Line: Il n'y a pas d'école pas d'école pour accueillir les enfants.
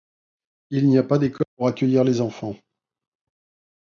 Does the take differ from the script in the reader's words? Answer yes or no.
yes